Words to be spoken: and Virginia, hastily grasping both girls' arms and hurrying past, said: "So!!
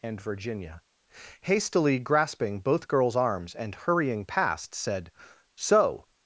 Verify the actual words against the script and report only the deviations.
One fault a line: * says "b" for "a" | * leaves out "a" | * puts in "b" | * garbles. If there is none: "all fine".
all fine